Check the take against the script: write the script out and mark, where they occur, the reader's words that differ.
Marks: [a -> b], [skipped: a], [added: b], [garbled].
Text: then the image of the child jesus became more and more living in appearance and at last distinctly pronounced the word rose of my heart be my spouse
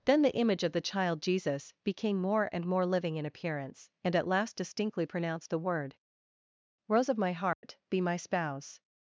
then the image of the child jesus became more and more living in appearance and at last distinctly pronounced the word rose of my heart be my spouse